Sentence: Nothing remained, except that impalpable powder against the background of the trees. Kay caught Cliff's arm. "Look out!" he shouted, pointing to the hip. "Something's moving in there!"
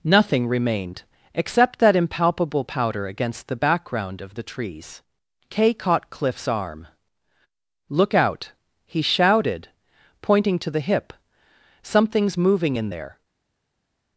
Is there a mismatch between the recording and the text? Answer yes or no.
no